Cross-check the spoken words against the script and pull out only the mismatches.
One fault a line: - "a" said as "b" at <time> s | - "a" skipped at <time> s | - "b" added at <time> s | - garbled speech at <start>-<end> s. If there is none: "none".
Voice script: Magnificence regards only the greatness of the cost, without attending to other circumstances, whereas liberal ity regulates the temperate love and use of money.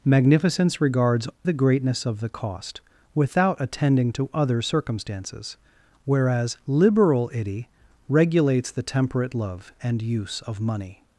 - "only" skipped at 1.3 s